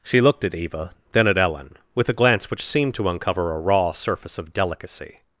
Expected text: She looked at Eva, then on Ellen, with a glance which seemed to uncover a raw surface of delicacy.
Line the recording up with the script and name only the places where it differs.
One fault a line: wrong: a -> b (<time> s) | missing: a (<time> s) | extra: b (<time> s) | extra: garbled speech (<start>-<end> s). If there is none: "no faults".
wrong: on -> at (1.3 s)